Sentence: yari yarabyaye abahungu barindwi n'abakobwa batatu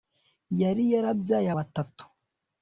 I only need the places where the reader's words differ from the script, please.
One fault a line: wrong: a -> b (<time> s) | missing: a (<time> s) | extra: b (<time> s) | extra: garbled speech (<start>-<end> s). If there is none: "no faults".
missing: abahungu barindwi n'abakobwa (1.5 s)